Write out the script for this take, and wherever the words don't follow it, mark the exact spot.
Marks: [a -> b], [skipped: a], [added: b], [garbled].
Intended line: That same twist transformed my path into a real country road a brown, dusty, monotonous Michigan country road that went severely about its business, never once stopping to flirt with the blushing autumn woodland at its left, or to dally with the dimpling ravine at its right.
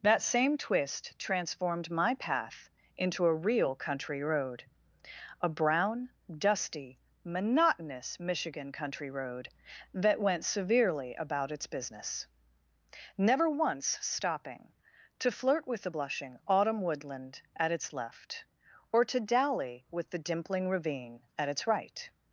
That same twist transformed my path into a real country road a brown, dusty, monotonous Michigan country road that went severely about its business, never once stopping to flirt with the blushing autumn woodland at its left, or to dally with the dimpling ravine at its right.